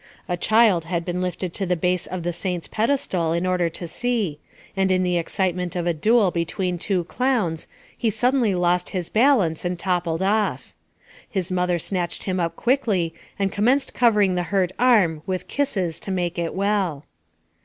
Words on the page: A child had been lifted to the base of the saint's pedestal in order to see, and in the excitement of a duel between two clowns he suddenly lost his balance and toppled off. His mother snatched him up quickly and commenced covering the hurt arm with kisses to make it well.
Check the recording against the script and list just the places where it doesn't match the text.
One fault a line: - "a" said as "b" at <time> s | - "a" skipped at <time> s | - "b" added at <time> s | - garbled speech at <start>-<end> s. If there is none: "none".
none